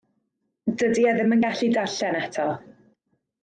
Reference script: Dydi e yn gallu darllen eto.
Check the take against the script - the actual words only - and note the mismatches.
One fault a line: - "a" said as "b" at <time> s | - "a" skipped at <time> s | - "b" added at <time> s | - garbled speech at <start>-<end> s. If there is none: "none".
- "ddim" added at 1.2 s